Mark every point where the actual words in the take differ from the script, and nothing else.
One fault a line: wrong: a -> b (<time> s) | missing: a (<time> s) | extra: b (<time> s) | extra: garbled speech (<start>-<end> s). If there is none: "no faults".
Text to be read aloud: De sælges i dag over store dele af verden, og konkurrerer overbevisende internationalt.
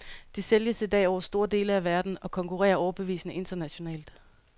no faults